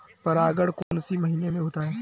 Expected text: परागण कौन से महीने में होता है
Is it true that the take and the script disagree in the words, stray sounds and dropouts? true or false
true